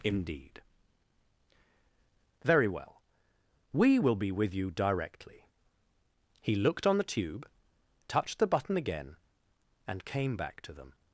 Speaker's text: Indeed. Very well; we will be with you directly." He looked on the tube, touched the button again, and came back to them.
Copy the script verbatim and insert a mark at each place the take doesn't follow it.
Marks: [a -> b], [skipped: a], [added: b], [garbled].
Indeed. Very well; we will be with you directly." He looked on the tube, touched the button again, and came back to them.